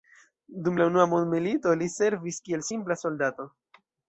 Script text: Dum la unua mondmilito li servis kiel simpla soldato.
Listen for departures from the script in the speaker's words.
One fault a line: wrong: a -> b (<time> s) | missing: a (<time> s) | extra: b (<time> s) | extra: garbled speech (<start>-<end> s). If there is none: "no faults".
no faults